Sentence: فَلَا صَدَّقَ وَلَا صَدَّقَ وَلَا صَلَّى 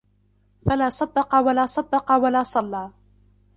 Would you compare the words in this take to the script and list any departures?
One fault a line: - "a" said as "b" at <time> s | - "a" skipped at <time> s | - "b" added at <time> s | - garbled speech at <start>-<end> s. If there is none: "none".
none